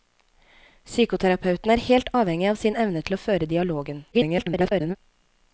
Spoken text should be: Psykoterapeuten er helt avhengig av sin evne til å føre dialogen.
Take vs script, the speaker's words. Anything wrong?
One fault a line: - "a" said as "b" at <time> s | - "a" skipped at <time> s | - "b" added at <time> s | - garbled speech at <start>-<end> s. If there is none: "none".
- garbled speech at 4.1-5.0 s